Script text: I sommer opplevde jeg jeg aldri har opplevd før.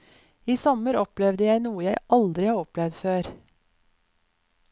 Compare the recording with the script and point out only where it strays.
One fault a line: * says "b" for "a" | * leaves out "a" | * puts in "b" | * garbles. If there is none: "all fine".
* puts in "noe"